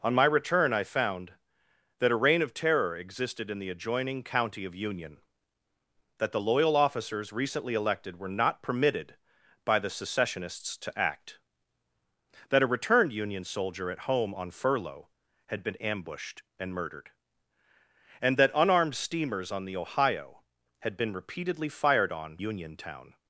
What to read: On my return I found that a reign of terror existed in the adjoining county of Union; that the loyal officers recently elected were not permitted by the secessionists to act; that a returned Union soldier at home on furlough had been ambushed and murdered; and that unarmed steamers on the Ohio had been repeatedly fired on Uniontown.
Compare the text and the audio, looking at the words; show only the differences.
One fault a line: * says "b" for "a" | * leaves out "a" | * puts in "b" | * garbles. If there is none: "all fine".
all fine